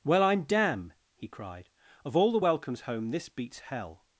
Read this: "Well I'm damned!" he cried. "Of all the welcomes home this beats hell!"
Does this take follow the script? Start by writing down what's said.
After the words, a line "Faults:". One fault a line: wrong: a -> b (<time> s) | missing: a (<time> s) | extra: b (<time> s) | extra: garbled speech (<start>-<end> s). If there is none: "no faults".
"Well I'm damn!" he cried. "Of all the welcomes home this beats hell!"
Faults:
wrong: damned -> damn (0.4 s)